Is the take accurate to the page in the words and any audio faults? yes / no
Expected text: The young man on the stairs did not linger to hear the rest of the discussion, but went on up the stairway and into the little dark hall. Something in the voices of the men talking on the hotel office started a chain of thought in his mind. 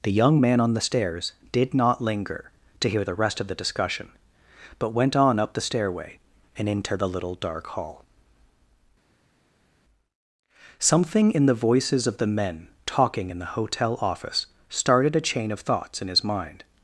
no